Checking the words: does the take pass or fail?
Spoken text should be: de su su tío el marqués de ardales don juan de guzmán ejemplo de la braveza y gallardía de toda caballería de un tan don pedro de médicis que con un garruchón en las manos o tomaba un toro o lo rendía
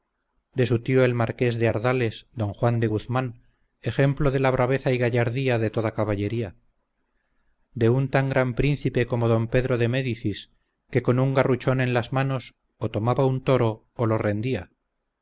fail